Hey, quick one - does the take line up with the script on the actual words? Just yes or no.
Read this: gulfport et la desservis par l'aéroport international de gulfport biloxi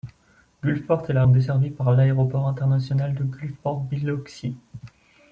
yes